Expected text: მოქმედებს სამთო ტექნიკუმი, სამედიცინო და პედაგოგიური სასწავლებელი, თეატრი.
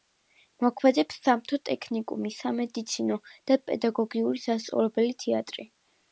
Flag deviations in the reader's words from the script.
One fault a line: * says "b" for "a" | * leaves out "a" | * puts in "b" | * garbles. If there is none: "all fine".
all fine